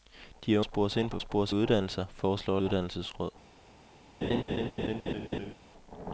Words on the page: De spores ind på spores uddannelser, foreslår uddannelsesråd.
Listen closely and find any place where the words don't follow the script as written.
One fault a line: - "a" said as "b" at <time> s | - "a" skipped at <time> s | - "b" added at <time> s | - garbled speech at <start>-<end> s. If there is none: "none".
none